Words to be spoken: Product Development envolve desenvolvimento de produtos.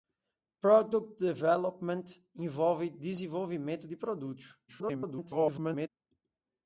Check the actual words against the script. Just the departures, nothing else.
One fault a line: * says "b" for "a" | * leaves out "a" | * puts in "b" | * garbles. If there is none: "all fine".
* garbles